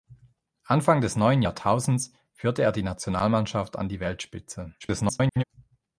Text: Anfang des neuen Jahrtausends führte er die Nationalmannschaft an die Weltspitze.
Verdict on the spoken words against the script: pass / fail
fail